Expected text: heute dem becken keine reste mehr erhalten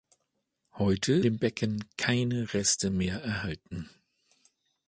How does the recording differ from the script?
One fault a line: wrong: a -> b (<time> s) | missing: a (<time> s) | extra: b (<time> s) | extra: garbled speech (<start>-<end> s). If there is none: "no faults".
no faults